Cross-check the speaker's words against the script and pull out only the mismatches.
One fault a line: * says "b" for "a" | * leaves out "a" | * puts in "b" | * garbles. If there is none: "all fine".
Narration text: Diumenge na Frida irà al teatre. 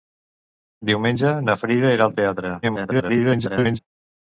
* garbles